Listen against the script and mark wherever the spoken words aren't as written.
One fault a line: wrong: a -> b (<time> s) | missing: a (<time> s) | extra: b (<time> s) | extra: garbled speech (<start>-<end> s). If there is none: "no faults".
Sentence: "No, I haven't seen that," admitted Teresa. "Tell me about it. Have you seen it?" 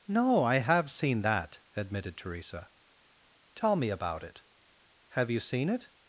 wrong: haven't -> have (0.6 s)